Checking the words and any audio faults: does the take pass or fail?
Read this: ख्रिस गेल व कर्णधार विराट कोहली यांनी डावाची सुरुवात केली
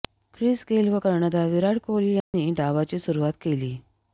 fail